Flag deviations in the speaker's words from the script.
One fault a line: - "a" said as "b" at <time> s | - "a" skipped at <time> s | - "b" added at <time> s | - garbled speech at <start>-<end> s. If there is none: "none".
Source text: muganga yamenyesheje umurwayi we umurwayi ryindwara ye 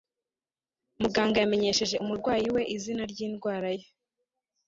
- "umurwayi" said as "izina" at 2.8 s